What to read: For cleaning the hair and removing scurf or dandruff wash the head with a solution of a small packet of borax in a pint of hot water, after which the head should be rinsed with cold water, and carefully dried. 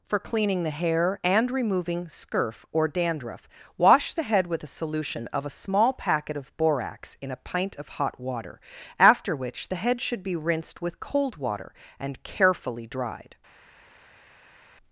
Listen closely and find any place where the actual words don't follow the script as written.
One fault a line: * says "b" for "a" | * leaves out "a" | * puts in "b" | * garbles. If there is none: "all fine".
all fine